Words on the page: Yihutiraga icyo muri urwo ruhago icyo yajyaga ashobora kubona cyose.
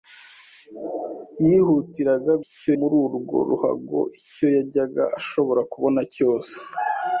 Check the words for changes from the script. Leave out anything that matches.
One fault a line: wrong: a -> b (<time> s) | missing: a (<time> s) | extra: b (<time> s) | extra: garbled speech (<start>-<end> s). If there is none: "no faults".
no faults